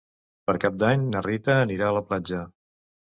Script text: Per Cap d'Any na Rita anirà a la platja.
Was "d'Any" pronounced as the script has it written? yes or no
yes